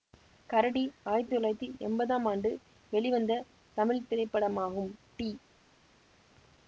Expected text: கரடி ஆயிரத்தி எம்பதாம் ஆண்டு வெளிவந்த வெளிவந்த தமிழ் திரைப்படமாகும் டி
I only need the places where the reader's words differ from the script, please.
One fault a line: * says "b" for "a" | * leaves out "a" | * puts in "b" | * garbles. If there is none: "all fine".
* puts in "தொள்ளாயிரத்தி"
* leaves out "வெளிவந்த"